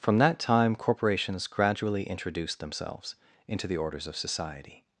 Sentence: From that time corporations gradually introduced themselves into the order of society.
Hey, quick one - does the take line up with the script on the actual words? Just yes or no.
no